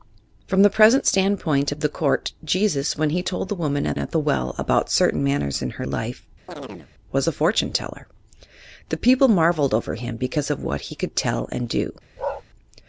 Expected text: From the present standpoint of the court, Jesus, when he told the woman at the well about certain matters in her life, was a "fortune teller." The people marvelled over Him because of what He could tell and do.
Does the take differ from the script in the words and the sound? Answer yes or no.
yes